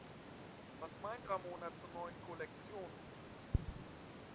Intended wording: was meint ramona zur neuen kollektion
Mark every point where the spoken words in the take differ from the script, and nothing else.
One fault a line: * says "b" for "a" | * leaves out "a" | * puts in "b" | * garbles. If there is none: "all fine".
all fine